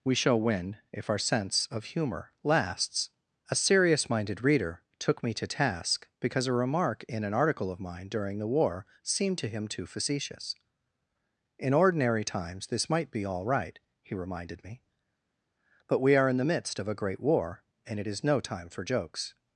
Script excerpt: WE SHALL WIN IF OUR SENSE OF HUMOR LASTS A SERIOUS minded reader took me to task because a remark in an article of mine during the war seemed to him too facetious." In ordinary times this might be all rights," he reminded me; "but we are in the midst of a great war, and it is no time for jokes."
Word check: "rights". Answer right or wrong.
wrong